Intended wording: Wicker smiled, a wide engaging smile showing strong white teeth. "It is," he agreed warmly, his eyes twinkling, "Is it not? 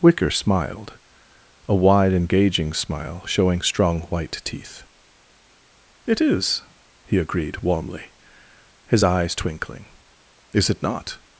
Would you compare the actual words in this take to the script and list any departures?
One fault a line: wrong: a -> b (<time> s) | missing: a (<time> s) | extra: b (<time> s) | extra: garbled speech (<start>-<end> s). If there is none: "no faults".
no faults